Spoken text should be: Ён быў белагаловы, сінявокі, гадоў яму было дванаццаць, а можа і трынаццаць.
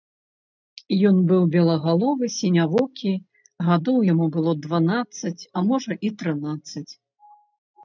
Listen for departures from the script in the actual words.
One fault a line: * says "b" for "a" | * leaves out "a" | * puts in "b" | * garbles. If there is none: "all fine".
all fine